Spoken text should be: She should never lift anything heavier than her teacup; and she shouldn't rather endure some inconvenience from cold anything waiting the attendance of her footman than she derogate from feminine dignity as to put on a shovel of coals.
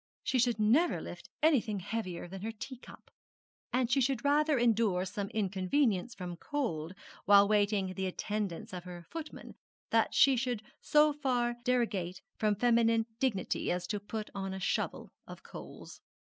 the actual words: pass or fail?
fail